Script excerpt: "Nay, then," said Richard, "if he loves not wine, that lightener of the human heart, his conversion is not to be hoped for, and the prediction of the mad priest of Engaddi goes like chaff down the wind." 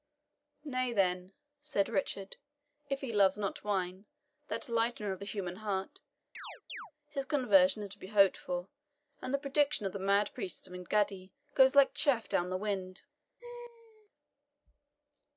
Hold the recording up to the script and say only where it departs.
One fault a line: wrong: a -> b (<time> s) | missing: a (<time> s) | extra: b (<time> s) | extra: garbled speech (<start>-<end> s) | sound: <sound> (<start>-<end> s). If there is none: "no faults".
sound: chirp (6.3-6.9 s)
missing: not (7.9 s)
sound: laugh (13.4-14.1 s)